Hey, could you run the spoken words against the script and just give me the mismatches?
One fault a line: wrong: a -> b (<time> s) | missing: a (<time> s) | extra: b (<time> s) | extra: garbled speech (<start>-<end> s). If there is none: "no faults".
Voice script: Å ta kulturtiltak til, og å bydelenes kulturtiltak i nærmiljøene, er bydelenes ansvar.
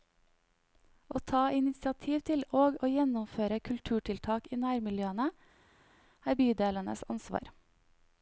wrong: kulturtiltak -> initiativ (1.6 s)
wrong: bydelenes -> gjennomføre (2.9 s)